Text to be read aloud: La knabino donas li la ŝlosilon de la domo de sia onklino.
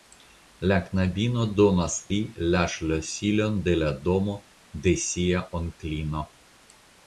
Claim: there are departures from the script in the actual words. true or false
false